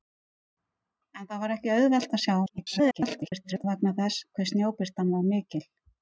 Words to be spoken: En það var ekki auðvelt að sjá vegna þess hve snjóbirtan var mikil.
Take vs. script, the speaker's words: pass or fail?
fail